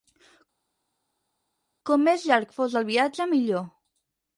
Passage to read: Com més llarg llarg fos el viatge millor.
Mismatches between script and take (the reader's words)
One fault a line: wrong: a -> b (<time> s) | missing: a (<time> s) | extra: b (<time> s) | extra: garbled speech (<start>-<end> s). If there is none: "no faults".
missing: llarg (2.5 s)